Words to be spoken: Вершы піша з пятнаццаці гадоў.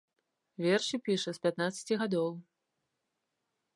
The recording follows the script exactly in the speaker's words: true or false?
true